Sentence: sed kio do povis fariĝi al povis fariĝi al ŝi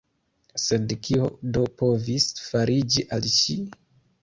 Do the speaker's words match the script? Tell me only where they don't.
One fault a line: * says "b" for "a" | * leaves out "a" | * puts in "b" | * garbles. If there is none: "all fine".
* leaves out "povis fariĝi al"